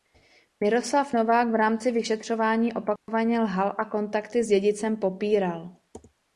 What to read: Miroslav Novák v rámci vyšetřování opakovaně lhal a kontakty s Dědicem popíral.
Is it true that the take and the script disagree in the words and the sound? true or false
true